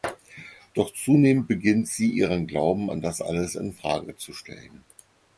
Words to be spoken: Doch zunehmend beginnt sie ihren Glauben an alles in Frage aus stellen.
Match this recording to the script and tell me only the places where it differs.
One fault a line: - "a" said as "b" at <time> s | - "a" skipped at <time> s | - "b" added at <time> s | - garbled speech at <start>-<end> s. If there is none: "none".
- "das" added at 3.0 s
- "aus" said as "zu" at 4.1 s